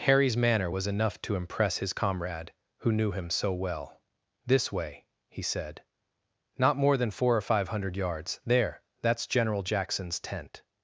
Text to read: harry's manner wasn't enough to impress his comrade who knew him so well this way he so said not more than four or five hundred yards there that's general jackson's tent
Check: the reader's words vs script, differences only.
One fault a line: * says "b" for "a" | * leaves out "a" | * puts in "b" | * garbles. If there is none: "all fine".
* says "was" for "wasn't"
* leaves out "so"